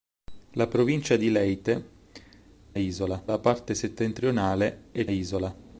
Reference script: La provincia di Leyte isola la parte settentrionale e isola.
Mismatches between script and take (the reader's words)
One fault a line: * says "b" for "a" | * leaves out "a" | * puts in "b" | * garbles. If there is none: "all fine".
all fine